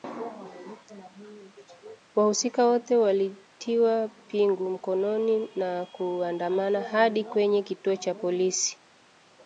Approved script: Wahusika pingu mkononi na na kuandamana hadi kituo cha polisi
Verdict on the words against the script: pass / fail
fail